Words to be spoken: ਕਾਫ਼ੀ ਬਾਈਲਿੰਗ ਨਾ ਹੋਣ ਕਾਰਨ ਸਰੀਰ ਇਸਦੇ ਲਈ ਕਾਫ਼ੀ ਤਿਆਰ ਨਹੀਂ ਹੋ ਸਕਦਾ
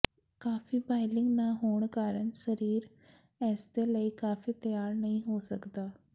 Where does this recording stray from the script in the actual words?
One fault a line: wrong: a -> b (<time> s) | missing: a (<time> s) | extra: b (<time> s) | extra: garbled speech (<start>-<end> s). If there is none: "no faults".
no faults